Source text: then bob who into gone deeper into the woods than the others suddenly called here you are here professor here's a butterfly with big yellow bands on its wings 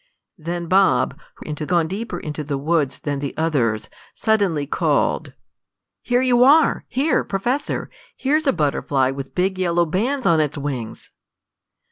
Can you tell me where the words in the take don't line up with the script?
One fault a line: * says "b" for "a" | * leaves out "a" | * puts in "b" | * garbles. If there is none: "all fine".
all fine